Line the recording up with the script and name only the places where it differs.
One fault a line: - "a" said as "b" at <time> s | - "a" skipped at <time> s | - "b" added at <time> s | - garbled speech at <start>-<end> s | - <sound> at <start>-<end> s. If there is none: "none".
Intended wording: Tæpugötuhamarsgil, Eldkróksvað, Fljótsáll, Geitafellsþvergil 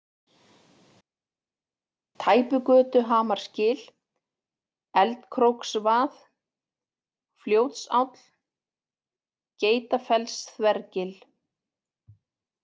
none